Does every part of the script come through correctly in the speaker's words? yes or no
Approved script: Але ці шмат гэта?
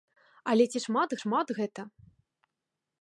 no